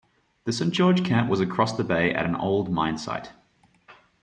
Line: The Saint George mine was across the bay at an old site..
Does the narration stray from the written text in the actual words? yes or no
yes